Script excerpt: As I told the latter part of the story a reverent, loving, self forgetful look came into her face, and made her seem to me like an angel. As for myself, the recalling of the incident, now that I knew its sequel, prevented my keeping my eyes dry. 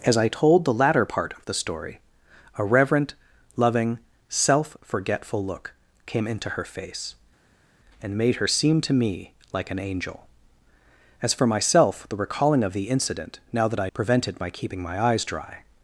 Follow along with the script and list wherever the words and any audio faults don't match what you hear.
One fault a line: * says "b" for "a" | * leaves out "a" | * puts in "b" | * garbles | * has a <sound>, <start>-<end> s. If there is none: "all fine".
* leaves out "knew its sequel"